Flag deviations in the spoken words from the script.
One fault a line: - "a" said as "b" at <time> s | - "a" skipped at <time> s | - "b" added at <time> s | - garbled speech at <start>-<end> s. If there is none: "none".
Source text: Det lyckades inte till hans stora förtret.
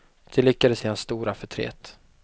- "inte" skipped at 0.8 s